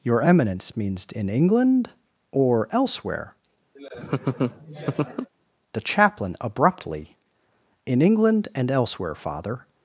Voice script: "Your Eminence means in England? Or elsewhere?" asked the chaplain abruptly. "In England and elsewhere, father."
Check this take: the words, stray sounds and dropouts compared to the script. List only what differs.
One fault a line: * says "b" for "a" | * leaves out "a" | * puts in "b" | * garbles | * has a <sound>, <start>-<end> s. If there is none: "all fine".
* leaves out "asked"
* has a laugh, 3.8-5.3 s